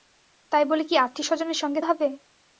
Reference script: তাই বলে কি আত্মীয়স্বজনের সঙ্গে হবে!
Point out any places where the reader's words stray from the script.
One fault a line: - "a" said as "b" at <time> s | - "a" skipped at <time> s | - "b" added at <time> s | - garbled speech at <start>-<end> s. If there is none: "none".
none